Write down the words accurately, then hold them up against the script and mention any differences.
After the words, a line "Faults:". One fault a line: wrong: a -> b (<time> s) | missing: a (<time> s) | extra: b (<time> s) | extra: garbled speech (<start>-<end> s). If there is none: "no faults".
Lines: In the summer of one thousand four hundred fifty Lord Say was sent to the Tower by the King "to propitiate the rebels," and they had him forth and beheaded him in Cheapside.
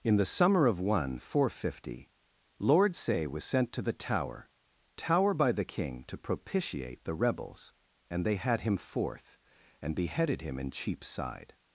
In the summer of one thousand four hundred fifty Lord Say was sent to the Tower Tower by the King "to propitiate the rebels," and they had him forth and beheaded him in Cheapside.
Faults:
extra: Tower (4.9 s)